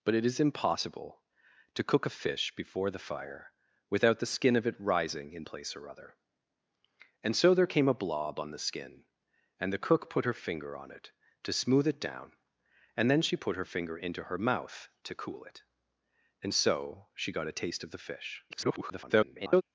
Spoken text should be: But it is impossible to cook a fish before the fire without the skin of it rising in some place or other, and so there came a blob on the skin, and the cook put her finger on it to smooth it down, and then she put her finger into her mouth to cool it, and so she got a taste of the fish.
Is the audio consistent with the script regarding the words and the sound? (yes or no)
no